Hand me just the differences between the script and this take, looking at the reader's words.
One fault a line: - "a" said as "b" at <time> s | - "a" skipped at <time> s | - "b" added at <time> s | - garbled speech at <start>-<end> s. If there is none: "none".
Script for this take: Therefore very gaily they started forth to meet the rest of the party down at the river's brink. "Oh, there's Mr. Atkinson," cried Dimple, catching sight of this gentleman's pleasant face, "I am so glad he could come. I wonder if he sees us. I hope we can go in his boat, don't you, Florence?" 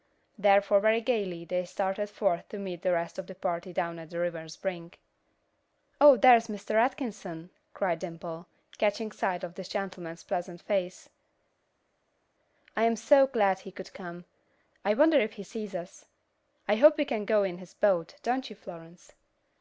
none